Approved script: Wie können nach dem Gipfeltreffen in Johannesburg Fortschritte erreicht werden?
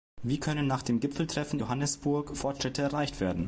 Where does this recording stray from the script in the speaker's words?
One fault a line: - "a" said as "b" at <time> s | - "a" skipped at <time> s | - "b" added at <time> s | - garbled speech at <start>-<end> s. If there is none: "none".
- "in" skipped at 1.6 s